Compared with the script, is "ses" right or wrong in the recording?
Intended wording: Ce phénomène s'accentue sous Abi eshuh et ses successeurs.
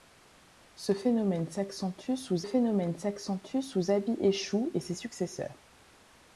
right